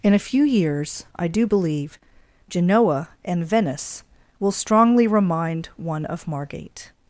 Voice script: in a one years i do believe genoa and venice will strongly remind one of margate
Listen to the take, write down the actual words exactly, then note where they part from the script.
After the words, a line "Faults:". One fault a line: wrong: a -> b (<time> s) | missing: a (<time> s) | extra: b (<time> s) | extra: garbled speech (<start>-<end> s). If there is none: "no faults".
in a few years i do believe genoa and venice will strongly remind one of margate
Faults:
wrong: one -> few (0.2 s)